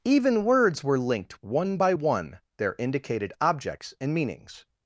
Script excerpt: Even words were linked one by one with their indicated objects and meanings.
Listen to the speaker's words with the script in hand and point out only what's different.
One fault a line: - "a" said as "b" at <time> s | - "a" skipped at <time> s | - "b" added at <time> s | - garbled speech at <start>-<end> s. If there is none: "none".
- "with" skipped at 2.4 s